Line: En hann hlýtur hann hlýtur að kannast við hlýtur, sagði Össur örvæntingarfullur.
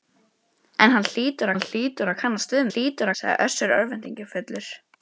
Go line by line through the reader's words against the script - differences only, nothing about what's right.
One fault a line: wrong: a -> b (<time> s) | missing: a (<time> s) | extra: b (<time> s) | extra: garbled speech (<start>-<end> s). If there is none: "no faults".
no faults